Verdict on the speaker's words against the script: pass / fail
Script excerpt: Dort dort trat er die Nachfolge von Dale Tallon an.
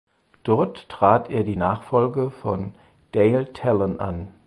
fail